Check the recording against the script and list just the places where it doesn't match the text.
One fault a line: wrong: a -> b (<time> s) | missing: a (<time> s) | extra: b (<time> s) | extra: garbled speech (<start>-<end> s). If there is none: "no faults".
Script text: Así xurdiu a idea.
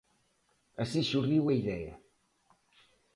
no faults